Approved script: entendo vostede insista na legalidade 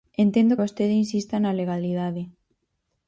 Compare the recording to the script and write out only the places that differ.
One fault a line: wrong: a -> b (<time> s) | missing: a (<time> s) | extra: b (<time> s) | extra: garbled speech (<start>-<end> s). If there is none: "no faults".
no faults